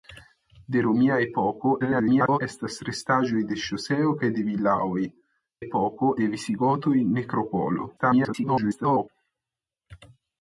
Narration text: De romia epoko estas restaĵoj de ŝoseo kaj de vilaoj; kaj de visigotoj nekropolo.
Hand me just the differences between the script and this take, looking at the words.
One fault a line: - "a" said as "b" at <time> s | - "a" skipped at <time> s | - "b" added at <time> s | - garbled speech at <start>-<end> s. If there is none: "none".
- garbled speech at 1.8-2.4 s
- "kaj" said as "epoko" at 5.6 s
- garbled speech at 8.0-9.1 s